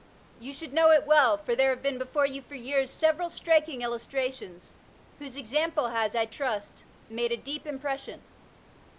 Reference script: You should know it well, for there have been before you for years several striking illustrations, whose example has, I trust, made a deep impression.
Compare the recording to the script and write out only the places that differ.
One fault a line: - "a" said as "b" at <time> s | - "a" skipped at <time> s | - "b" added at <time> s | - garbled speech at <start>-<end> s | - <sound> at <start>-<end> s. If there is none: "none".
none